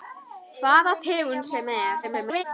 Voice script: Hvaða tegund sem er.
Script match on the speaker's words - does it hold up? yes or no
no